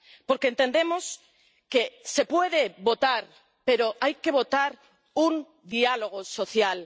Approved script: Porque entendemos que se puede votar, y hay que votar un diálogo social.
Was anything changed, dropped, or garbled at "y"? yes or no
yes